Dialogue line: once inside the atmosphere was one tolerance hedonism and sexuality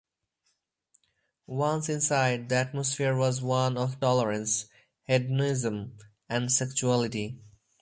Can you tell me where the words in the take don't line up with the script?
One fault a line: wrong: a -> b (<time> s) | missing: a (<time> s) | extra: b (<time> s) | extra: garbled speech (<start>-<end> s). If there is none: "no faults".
extra: of (3.8 s)